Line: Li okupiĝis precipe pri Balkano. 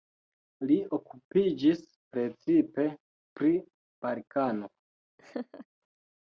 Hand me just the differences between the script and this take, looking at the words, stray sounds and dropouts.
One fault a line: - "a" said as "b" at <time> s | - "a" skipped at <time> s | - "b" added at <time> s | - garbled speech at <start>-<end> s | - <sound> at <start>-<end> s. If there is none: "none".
- laugh at 5.2-5.7 s